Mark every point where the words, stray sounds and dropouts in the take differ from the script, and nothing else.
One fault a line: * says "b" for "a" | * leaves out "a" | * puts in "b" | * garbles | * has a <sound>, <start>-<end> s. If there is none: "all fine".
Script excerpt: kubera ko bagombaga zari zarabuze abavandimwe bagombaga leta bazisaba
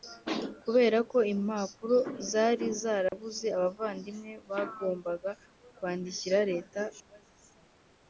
* says "impapuro" for "bagombaga"
* has a dropout, 3.1-3.1 s
* puts in "kwandikira"